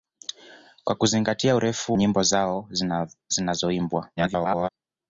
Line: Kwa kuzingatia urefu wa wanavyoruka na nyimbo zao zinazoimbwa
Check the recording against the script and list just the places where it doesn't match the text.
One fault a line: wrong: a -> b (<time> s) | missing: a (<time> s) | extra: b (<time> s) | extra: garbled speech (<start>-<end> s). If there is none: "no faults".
missing: wa wanavyoruka na (2.0 s)
extra: garbled speech (4.2-4.7 s)